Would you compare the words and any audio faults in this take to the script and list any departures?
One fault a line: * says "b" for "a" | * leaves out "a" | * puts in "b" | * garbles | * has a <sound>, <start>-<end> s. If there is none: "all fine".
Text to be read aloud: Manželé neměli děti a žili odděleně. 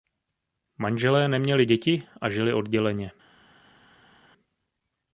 all fine